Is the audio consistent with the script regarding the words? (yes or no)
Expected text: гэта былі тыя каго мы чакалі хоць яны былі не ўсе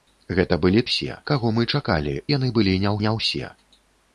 no